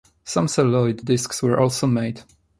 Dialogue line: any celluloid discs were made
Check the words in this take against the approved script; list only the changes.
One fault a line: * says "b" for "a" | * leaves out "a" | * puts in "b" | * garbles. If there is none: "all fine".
* says "some" for "any"
* puts in "also"